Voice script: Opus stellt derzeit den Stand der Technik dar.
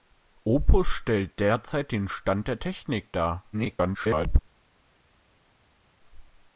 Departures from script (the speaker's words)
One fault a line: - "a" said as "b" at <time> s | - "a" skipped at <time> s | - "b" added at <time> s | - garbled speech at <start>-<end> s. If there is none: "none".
- garbled speech at 3.5-4.4 s